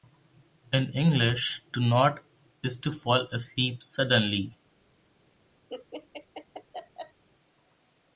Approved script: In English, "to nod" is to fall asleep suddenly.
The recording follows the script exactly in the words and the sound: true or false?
false